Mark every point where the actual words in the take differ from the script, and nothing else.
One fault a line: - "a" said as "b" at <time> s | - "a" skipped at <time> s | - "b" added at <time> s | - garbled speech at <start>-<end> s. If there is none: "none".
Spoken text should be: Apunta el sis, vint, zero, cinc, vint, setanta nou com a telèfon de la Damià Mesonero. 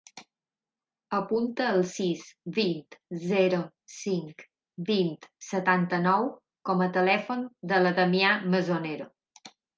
none